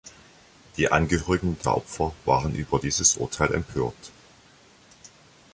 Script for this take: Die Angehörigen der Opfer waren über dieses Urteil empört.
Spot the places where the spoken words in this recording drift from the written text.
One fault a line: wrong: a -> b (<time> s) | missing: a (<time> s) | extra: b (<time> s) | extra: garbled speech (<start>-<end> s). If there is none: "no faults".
no faults